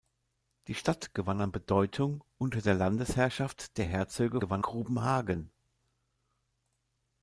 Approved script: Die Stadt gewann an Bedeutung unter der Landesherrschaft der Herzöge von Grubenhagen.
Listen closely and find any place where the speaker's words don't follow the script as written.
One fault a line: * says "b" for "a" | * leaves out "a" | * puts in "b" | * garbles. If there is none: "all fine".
* says "gewann" for "von"